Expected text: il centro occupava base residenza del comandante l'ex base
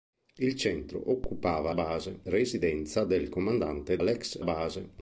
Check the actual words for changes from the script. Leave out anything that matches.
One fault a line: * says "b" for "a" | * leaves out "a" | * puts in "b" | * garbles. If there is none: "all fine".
all fine